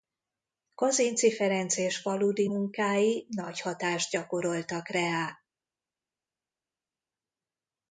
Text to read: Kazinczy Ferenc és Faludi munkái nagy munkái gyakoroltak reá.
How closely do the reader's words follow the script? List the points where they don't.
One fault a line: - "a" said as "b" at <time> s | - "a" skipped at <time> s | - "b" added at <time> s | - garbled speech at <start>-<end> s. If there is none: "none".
- "munkái" said as "hatást" at 3.6 s